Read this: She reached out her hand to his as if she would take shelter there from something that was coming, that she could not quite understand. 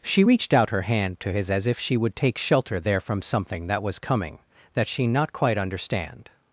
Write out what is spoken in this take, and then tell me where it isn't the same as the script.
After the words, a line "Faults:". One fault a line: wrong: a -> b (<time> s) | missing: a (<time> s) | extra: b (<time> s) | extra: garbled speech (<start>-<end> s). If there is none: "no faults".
She reached out her hand to his as if she would take shelter there from something that was coming, that she not quite understand.
Faults:
missing: could (5.1 s)